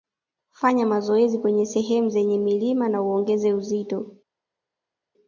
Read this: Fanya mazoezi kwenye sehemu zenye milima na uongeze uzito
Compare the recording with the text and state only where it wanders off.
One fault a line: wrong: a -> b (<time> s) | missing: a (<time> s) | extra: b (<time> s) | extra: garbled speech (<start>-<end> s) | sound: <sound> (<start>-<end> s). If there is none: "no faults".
no faults